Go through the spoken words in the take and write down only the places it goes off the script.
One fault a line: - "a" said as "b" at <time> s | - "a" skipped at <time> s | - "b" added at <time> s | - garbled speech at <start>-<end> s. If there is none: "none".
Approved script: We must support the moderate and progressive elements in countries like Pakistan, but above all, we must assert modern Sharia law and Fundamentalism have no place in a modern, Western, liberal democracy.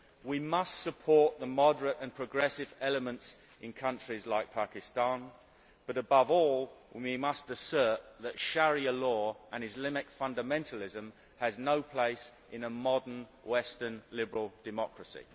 - "modern" said as "that" at 8.2 s
- "Islamic" added at 9.6 s